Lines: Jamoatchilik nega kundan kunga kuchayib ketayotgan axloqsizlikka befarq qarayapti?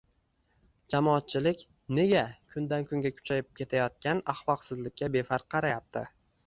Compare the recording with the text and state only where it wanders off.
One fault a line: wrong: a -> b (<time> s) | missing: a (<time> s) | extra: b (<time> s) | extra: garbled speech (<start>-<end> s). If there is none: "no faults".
no faults